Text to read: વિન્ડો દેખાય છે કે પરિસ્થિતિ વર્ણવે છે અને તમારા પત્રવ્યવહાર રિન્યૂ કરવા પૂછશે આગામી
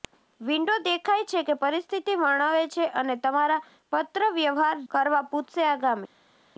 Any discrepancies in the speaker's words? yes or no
yes